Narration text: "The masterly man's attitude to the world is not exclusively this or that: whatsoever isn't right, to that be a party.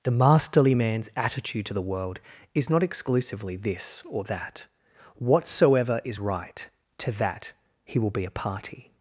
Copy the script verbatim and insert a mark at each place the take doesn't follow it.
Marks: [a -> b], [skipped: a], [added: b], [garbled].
"The masterly man's attitude to the world is not exclusively this or that: whatsoever [isn't -> is] right, to that [added: he will] be a party.